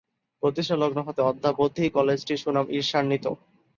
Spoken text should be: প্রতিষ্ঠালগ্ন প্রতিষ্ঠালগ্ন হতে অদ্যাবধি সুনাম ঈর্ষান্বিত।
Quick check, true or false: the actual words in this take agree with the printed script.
false